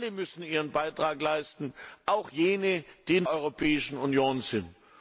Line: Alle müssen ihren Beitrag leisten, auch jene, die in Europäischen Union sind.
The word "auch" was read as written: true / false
true